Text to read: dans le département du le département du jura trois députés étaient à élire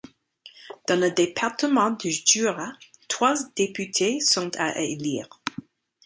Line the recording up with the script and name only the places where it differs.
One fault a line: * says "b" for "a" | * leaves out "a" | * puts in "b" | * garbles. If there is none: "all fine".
* leaves out "le département du"
* says "sont" for "étaient"